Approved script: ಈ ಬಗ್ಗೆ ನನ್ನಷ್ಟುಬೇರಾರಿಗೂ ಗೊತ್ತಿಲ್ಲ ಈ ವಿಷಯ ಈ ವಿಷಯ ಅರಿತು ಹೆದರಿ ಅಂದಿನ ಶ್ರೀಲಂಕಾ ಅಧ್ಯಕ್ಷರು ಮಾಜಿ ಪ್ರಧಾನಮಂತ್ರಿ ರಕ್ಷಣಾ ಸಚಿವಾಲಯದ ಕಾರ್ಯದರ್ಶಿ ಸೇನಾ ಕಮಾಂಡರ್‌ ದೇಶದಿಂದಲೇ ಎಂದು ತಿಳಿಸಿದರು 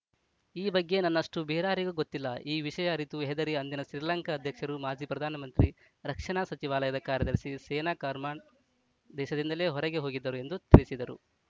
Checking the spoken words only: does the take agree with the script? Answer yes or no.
no